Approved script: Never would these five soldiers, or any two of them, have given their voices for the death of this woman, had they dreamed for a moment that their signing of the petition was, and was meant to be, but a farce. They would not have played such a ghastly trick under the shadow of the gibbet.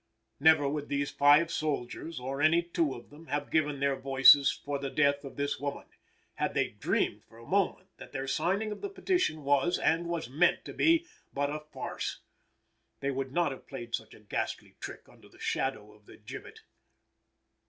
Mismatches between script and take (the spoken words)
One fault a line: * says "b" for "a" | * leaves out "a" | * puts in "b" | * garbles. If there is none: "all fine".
all fine